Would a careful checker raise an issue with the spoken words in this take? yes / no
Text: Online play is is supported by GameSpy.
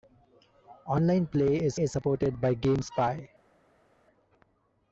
no